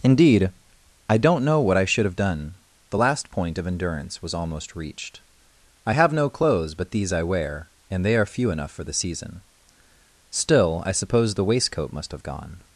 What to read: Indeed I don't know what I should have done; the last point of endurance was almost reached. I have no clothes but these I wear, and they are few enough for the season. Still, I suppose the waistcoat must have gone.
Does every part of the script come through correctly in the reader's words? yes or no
yes